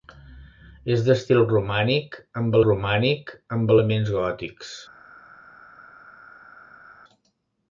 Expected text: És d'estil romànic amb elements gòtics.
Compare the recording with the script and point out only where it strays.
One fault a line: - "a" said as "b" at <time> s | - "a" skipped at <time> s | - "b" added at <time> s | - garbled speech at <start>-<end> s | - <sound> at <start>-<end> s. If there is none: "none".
- "romànic amb" added at 2.7 s